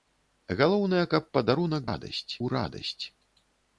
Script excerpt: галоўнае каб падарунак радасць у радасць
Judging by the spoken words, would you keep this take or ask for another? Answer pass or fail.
pass